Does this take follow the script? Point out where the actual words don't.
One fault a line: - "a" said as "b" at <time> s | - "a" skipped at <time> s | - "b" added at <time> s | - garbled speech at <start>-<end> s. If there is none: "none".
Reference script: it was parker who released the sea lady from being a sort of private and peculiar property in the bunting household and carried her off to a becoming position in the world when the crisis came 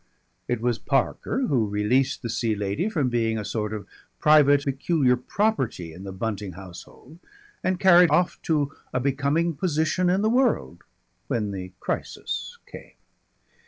- "and" skipped at 4.7 s
- "her" skipped at 8.1 s